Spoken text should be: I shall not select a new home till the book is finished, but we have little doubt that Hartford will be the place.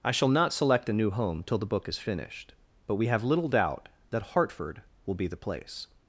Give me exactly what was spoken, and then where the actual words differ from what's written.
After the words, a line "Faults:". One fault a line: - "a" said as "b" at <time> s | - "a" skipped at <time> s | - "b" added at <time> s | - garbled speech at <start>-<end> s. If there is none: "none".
I shall not select a new home till the book is finished, but we have little doubt that Hartford will be the place.
Faults:
none